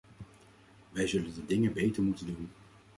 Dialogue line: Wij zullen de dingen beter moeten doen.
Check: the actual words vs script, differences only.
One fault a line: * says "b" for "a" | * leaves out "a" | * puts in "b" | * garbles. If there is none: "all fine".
all fine